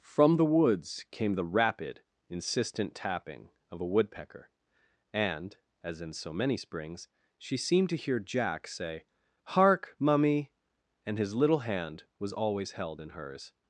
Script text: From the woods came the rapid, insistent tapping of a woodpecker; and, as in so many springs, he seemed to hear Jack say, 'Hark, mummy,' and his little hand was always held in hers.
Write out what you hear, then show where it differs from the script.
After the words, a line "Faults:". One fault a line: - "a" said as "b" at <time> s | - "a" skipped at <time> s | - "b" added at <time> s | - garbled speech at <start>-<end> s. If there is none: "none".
From the woods came the rapid, insistent tapping of a woodpecker; and, as in so many springs, she seemed to hear Jack say, 'Hark, mummy,' and his little hand was always held in hers.
Faults:
- "he" said as "she" at 7.4 s